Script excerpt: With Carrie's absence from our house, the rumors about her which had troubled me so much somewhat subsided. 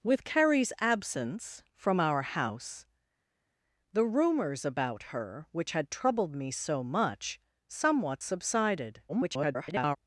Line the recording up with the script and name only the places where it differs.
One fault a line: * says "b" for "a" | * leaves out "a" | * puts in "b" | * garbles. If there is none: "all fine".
* garbles